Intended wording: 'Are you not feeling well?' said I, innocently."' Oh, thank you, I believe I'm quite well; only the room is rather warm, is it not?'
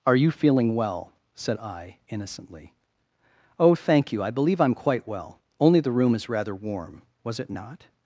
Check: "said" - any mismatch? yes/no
no